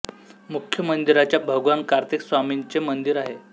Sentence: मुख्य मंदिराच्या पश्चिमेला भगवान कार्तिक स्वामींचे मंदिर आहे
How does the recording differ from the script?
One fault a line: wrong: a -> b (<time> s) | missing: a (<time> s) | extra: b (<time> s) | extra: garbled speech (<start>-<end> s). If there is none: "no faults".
missing: पश्चिमेला (1.4 s)